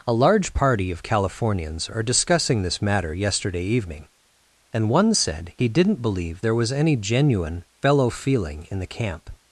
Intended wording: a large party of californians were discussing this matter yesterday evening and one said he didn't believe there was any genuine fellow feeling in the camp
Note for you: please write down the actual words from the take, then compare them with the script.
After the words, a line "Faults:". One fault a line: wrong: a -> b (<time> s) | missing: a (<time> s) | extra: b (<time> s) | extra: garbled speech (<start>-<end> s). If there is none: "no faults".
a large party of californians are discussing this matter yesterday evening and one said he didn't believe there was any genuine fellow feeling in the camp
Faults:
wrong: were -> are (1.9 s)